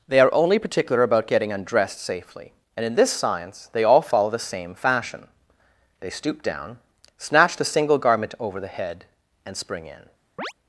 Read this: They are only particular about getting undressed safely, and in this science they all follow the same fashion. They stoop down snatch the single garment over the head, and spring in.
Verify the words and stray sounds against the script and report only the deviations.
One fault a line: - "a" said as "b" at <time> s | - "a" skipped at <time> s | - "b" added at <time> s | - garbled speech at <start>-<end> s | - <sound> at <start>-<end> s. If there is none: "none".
- chirp at 10.4-10.5 s